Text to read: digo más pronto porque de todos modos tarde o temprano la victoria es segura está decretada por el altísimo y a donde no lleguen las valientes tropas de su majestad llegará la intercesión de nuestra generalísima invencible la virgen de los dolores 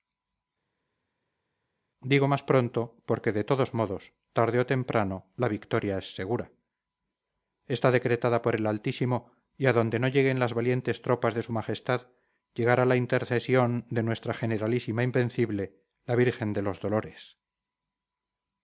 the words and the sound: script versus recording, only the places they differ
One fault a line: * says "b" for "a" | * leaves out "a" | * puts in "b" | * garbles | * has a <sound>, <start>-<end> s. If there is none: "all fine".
all fine